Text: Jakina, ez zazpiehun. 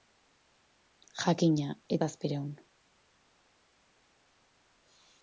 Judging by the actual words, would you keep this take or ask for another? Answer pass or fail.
pass